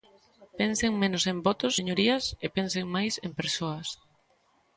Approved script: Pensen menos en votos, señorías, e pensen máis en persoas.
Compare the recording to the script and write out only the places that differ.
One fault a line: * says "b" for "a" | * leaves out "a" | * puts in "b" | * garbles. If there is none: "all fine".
all fine